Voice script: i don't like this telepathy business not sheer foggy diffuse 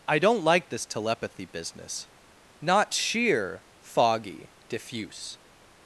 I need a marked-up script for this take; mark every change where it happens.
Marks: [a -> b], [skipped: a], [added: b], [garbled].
i don't like this telepathy business not sheer foggy diffuse